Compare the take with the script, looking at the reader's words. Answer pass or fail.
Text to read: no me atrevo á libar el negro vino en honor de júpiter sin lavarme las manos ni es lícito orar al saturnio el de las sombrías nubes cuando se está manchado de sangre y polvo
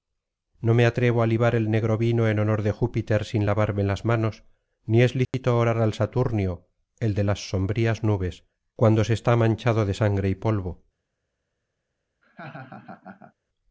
pass